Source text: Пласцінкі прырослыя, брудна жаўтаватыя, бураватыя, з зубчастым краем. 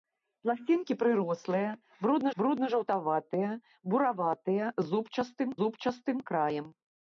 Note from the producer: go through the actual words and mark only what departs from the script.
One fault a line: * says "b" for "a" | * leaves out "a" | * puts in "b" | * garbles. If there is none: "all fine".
* puts in "брудна"
* puts in "зубчастым"